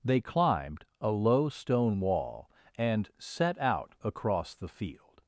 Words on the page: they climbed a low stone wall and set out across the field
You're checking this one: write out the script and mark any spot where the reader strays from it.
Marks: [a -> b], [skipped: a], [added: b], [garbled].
they climbed a low stone wall and set out across the field